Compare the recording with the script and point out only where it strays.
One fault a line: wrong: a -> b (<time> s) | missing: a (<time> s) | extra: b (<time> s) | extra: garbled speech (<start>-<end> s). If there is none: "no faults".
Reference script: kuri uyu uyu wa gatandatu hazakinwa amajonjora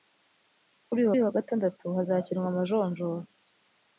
no faults